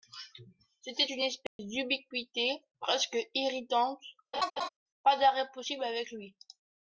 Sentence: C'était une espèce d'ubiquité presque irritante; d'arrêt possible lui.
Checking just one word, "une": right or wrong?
right